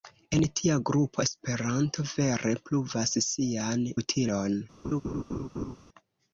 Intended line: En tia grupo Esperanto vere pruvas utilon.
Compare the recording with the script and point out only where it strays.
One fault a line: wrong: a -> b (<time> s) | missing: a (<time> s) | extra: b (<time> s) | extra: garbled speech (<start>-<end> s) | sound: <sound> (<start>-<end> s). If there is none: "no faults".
extra: sian (3.3 s)
sound: laugh (4.8-5.8 s)